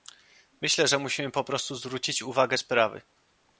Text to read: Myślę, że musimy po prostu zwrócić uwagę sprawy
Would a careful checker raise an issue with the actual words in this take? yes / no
no